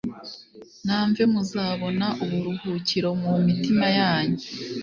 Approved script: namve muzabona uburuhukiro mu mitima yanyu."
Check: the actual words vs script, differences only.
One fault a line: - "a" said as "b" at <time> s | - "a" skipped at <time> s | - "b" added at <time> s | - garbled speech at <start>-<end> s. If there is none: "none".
none